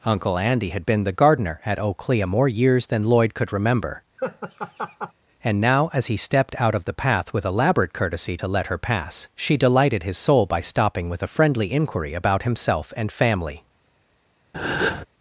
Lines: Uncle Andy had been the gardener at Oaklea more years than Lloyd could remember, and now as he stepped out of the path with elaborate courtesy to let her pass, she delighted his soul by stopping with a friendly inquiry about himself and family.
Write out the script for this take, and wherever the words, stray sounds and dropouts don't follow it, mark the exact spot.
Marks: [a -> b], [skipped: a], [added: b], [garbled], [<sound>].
Uncle Andy had been the gardener at Oaklea more years than Lloyd could remember, [laugh] and now as he stepped out of the path with elaborate courtesy to let her pass, she delighted his soul by stopping with a friendly inquiry about himself and family. [breath]